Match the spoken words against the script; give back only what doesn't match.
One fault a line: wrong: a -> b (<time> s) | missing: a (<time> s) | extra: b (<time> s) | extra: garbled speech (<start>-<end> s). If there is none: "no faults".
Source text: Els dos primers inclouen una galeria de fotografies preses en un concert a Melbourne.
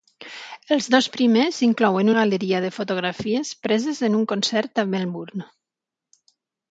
missing: una (2.1 s)